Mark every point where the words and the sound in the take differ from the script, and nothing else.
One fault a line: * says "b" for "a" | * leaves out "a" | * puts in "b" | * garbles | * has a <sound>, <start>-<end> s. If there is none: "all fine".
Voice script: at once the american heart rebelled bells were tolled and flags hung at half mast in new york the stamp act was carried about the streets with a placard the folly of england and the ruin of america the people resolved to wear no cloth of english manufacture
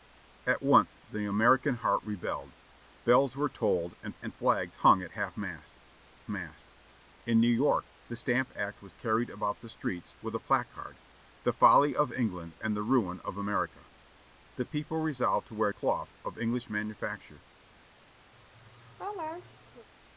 * puts in "and"
* puts in "mast"
* leaves out "no"
* has a laugh, 18.3-19.9 s